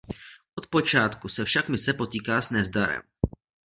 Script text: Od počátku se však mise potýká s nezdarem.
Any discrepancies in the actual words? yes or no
no